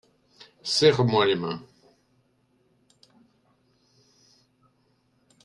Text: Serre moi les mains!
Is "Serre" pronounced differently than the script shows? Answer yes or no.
no